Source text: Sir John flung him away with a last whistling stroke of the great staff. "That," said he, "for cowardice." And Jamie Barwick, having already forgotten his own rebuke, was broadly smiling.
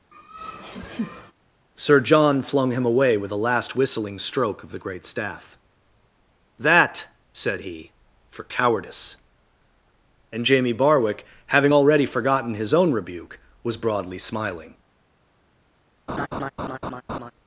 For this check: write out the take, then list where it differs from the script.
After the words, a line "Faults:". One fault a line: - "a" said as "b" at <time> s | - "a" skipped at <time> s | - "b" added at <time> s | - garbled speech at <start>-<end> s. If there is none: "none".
Sir John flung him away with a last whistling stroke of the great staff. "That," said he, "for cowardice." And Jamie Barwick, having already forgotten his own rebuke, was broadly smiling.
Faults:
none